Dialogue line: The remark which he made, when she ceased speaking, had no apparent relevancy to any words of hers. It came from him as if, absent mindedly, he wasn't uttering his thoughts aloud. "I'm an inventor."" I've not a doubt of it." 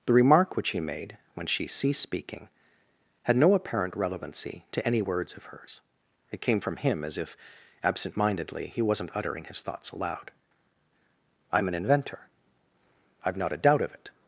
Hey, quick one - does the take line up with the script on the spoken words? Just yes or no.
yes